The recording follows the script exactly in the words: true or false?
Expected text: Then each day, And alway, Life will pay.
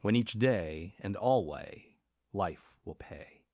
false